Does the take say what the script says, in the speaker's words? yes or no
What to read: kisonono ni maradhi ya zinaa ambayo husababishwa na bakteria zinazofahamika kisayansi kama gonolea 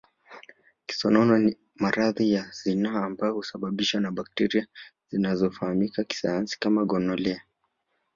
yes